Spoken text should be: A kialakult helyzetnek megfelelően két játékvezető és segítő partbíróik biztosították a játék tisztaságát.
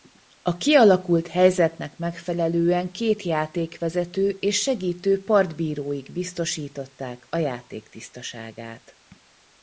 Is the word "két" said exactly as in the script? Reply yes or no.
yes